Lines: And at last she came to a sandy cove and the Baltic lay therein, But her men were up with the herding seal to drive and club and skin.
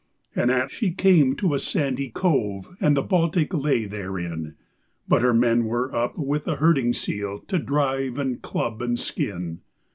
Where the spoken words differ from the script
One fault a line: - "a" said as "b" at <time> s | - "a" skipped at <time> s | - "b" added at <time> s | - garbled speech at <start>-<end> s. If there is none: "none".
- "last" skipped at 0.7 s